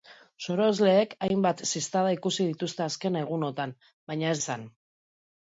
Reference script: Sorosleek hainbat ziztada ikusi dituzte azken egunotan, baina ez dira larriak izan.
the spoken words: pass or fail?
fail